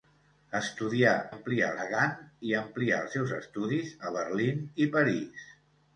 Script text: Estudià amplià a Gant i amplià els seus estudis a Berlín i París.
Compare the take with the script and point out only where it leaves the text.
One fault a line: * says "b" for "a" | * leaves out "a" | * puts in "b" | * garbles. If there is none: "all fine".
all fine